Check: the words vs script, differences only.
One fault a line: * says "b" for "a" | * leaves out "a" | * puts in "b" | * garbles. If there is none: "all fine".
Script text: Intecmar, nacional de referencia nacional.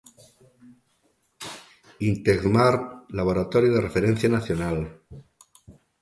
* says "laboratorio" for "nacional"